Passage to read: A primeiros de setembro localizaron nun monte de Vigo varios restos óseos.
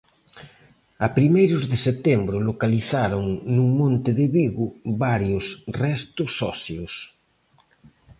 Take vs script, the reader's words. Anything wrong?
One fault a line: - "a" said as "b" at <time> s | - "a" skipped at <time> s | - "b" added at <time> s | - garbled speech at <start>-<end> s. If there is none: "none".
none